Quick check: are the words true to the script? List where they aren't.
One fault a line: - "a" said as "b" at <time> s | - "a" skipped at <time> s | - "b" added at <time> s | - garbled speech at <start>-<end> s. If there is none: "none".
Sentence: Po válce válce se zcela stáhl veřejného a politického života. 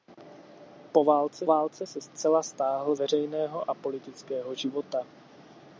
none